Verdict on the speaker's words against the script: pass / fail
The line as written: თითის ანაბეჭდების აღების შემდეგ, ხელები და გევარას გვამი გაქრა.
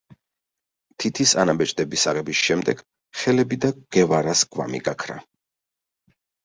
pass